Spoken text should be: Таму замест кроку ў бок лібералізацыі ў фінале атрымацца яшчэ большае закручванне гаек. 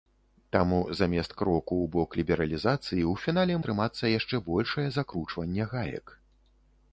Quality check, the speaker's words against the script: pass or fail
pass